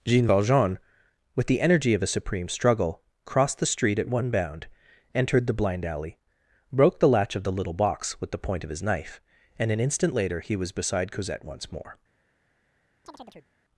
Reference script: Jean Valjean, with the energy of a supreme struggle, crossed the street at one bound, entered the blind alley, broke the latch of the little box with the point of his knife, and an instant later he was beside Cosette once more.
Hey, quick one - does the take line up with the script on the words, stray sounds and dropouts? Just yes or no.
no